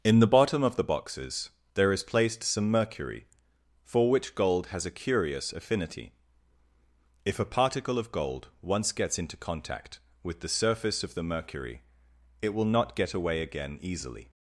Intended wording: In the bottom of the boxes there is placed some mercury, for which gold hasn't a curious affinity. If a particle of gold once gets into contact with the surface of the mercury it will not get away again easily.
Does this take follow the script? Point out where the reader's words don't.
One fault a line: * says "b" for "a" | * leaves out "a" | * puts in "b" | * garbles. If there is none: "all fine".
* says "has" for "hasn't"